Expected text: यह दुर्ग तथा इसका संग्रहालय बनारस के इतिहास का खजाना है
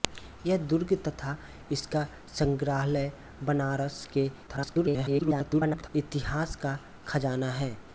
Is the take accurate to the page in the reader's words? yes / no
no